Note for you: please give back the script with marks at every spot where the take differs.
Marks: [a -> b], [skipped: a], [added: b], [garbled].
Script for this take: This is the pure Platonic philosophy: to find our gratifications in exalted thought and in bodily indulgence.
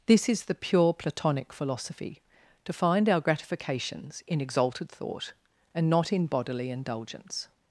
This is the pure Platonic philosophy: to find our gratifications in exalted thought and [added: not] in bodily indulgence.